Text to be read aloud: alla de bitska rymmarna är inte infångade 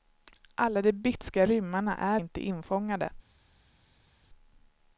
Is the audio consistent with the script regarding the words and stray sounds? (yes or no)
yes